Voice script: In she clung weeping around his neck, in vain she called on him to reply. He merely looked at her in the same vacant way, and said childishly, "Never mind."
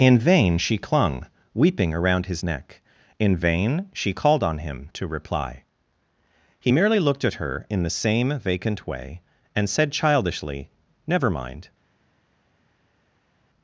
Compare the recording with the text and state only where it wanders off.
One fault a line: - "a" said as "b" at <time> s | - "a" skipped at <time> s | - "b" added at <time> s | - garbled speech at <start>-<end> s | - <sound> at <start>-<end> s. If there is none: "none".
- "vain" added at 0.2 s